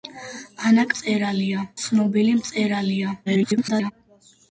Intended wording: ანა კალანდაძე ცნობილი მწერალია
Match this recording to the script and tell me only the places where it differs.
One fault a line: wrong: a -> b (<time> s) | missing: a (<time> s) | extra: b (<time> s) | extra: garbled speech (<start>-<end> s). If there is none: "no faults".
wrong: კალანდაძე -> მწერალია (0.9 s)
extra: garbled speech (3.3-3.9 s)